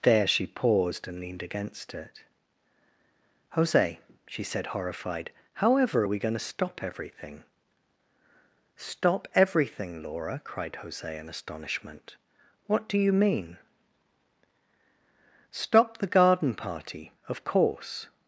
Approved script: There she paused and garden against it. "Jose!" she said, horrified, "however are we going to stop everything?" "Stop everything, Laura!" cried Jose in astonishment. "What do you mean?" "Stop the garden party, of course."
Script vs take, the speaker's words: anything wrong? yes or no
yes